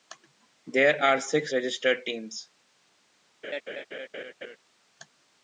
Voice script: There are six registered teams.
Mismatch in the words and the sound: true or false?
true